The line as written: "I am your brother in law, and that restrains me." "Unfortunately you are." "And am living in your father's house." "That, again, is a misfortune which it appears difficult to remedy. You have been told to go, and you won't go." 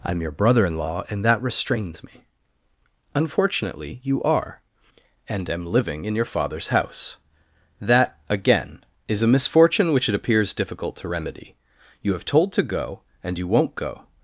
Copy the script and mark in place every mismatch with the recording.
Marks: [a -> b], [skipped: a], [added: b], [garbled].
"I am your brother in law, and that restrains me." "Unfortunately you are." "And am living in your father's house." "That, again, is a misfortune which it appears difficult to remedy. You have [skipped: been] told to go, and you won't go."